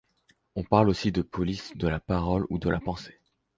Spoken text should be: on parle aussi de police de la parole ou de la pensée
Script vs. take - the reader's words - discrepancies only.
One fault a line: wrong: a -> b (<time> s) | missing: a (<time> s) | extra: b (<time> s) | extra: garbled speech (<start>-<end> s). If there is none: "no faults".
no faults